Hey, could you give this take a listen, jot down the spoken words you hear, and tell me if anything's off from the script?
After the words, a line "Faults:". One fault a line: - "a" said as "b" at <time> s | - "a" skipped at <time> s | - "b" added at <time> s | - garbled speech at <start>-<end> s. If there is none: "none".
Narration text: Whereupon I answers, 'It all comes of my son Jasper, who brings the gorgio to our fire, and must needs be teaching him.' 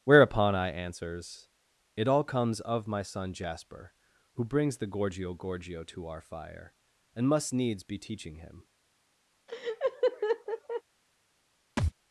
Whereupon I answers, 'It all comes of my son Jasper, who brings the gorgio gorgio to our fire, and must needs be teaching him.'
Faults:
- "gorgio" added at 5.3 s